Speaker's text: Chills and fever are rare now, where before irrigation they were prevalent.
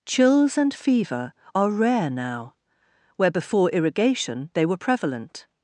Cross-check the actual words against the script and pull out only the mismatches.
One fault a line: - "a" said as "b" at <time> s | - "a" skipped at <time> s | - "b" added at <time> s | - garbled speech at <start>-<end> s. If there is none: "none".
none